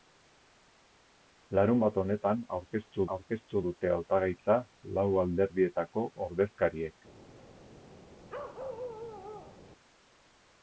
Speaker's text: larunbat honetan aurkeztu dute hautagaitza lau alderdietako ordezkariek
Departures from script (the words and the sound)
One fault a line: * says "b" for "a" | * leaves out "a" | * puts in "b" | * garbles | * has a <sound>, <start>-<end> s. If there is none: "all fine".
* puts in "aurkeztu"
* has a bark, 8.3-9.6 s